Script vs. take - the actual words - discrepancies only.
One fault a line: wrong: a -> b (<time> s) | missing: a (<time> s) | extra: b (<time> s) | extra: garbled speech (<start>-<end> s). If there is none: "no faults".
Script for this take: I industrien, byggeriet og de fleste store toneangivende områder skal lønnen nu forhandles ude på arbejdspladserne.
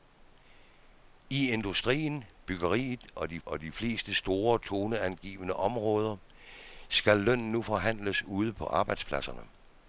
extra: og de (3.5 s)